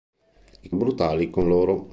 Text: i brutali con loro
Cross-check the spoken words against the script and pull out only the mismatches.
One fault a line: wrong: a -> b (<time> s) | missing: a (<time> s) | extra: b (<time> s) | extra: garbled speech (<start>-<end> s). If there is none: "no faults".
no faults